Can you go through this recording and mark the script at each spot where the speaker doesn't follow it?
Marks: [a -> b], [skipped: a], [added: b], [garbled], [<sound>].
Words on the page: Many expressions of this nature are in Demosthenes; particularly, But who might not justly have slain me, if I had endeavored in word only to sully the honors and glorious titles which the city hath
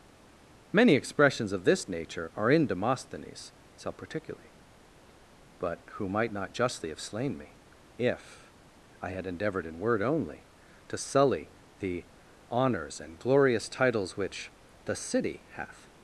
Many expressions of this nature are in Demosthenes; [added: self] particularly, But who might not justly have slain me, if I had endeavored in word only to sully the honors and glorious titles which the city hath